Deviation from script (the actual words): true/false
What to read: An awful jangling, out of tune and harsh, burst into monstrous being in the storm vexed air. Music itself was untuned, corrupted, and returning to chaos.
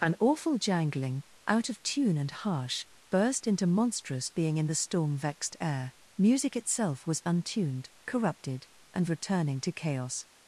false